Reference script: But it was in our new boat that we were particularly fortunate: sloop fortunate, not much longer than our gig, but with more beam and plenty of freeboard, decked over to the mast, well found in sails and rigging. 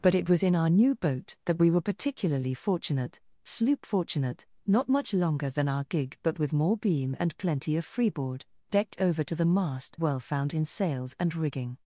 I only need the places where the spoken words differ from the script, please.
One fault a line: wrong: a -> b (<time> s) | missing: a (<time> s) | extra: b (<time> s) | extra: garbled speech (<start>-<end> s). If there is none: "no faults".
no faults